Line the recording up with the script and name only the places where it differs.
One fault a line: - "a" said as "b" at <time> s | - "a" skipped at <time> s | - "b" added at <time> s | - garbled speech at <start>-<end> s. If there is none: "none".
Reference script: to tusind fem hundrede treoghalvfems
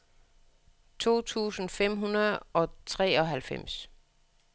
- "og" added at 2.5 s